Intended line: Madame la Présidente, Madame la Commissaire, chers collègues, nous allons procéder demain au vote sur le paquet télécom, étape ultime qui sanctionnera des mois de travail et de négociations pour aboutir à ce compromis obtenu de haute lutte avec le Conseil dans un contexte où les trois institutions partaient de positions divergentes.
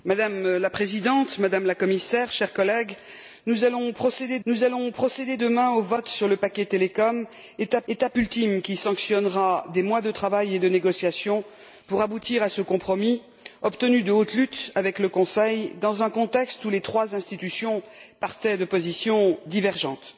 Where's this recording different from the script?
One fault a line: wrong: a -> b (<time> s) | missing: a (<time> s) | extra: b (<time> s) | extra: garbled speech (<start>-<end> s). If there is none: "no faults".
extra: nous allons procéder (4.4 s)
extra: étape (7.9 s)